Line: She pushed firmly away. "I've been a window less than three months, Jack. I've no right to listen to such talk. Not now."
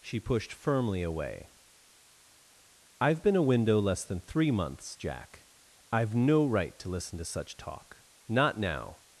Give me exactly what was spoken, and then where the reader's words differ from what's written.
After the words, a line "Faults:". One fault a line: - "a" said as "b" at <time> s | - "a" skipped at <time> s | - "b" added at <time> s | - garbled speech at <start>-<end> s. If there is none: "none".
She pushed firmly away. "I've been a window less than three months, Jack. I've no right to listen to such talk. Not now."
Faults:
none